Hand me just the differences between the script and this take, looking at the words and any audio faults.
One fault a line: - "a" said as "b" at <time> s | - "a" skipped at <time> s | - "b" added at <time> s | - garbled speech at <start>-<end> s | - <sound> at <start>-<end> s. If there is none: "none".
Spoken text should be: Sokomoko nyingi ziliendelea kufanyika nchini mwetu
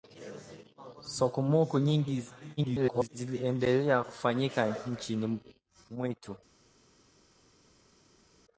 - garbled speech at 2.6-3.1 s